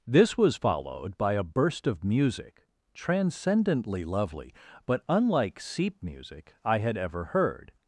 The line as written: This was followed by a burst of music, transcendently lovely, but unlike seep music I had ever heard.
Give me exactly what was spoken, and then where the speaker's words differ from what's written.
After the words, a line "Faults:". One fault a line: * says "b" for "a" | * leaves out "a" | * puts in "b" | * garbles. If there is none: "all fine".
This was followed by a burst of music, transcendently lovely, but unlike seep music I had ever heard.
Faults:
all fine